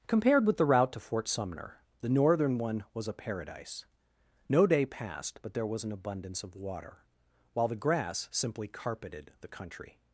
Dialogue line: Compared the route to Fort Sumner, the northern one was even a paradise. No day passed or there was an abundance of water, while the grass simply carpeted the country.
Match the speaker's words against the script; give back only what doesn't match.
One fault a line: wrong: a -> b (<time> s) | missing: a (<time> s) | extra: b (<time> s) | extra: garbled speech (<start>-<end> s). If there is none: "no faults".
extra: with (0.5 s)
missing: even (3.1 s)
wrong: or -> but (5.4 s)